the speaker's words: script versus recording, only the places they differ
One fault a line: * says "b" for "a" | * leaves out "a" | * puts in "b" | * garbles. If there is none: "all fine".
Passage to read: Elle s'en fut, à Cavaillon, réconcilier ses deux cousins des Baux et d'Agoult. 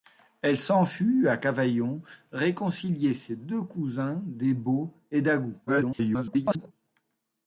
* garbles